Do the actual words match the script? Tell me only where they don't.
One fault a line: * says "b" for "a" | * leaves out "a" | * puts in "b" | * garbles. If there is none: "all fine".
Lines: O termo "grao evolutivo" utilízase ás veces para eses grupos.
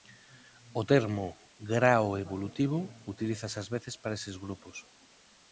all fine